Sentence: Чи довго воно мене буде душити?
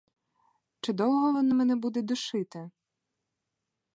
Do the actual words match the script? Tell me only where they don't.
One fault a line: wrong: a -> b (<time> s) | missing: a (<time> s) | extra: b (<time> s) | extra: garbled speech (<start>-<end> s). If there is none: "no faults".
no faults